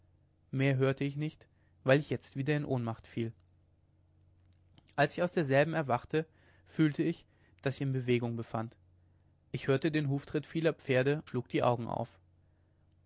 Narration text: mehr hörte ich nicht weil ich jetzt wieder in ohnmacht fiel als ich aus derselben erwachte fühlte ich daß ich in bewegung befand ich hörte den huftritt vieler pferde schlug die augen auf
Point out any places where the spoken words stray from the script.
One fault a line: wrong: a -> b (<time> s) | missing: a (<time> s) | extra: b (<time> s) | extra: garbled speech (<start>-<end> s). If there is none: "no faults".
no faults